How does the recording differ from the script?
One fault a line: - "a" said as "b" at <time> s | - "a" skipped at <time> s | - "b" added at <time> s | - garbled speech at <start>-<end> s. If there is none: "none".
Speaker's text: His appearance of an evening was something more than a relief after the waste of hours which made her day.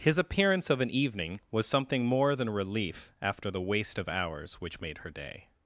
- "a" skipped at 2.5 s